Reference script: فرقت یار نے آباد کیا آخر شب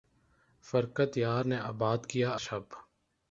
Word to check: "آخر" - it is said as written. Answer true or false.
false